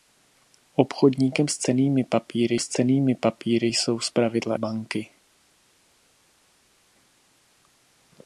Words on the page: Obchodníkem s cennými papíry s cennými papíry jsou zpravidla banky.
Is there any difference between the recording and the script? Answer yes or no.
no